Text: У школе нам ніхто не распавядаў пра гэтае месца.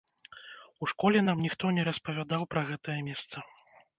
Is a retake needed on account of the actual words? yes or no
no